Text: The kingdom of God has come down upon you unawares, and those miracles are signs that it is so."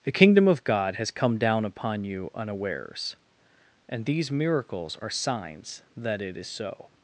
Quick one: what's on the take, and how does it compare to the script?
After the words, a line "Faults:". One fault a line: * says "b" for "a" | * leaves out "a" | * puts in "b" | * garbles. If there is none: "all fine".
The kingdom of God has come down upon you unawares, and these miracles are signs that it is so."
Faults:
* says "these" for "those"